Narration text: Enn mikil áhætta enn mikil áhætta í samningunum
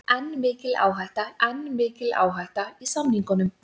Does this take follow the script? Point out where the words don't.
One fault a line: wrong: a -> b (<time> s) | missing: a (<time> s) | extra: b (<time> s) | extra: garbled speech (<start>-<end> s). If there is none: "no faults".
no faults